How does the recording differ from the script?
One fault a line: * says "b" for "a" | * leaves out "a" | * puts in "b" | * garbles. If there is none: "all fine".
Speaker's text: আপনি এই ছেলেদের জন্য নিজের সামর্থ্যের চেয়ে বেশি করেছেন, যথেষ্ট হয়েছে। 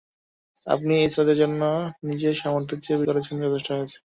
* leaves out "বেশি"